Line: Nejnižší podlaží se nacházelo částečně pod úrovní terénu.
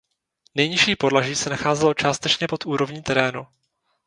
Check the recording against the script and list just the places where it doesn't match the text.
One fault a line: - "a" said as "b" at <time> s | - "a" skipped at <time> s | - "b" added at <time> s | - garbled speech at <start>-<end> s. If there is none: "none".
none